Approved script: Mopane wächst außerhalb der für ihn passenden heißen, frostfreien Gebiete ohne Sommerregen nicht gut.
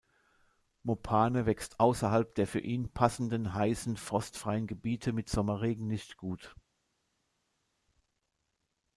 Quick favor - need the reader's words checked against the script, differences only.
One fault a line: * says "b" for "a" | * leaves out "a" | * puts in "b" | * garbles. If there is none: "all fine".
* says "mit" for "ohne"